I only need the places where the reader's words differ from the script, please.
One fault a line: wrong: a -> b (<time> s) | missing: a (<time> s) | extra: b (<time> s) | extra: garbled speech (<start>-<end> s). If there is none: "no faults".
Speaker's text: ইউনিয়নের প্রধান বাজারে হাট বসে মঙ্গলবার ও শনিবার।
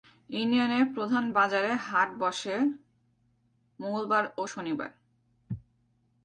no faults